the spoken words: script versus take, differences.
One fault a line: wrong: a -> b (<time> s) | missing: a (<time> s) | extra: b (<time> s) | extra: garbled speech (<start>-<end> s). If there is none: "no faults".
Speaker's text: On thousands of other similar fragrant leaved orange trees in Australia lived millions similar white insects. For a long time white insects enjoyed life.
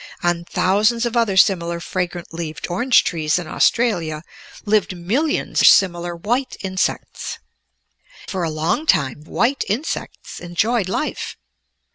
no faults